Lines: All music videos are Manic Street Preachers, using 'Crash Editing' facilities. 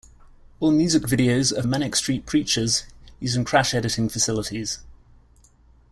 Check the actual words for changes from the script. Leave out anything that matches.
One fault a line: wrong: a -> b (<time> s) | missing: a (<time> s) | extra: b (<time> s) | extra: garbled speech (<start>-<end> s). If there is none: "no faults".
no faults